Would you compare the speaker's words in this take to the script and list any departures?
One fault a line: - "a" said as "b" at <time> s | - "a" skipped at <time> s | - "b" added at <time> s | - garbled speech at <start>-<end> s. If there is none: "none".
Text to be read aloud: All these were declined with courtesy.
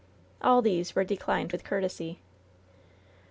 none